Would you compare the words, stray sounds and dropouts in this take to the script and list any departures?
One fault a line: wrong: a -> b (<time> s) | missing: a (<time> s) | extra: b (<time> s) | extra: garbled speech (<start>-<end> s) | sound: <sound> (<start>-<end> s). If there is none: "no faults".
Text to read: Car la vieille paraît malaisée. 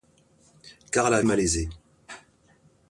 missing: vieille paraît (1.2 s)